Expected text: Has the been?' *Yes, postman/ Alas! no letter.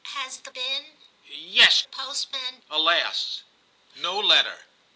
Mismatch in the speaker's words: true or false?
false